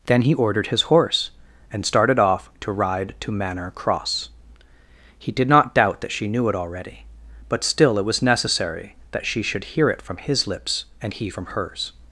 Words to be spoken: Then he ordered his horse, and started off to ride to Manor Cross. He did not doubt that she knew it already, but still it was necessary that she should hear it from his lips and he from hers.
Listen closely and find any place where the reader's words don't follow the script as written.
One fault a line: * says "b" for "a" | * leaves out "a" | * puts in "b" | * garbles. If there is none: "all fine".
all fine